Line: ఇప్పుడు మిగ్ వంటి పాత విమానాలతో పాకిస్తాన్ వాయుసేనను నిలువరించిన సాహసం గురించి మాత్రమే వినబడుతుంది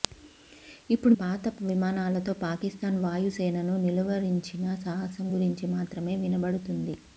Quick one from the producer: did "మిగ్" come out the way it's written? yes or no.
no